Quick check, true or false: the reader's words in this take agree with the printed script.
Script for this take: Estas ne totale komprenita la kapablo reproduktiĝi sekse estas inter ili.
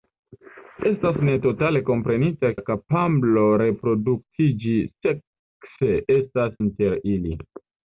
true